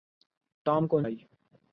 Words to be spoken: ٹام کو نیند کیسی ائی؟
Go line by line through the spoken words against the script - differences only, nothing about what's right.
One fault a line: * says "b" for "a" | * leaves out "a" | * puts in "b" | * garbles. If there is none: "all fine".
* leaves out "نیند کیسی"